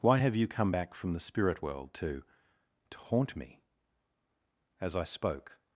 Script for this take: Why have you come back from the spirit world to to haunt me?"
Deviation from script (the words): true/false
true